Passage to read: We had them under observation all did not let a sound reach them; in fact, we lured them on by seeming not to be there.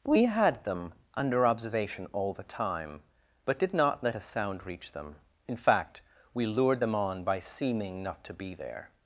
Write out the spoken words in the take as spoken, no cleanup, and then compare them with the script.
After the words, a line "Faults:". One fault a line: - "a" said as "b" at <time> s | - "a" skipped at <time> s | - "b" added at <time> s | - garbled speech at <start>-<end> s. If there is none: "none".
We had them under observation all the time, but did not let a sound reach them; in fact, we lured them on by seeming not to be there.
Faults:
- "the time but" added at 2.3 s